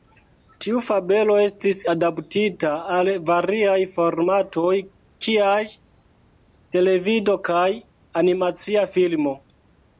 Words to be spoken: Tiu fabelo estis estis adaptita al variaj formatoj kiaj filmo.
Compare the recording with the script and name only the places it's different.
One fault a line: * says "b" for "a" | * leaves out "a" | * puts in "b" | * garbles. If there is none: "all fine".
* leaves out "estis"
* puts in "televido kaj animacia"